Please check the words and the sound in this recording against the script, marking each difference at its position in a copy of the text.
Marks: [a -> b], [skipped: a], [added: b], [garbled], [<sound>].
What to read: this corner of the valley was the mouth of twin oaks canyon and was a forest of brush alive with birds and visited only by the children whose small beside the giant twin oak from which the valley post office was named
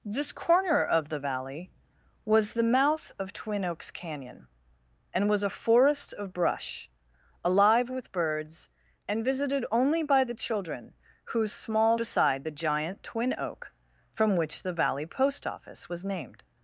this corner of the valley was the mouth of twin oaks canyon and was a forest of brush alive with birds and visited only by the children whose small beside the giant twin oak from which the valley post office was named